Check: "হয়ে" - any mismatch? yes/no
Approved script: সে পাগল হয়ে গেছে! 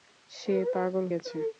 yes